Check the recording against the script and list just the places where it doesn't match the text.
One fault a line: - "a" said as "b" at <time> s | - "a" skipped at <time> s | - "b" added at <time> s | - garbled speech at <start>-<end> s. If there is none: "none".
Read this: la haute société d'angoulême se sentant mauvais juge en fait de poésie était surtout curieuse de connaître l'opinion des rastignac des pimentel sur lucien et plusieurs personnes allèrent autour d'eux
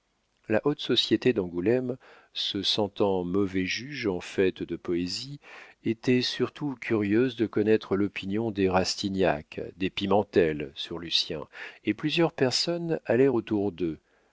none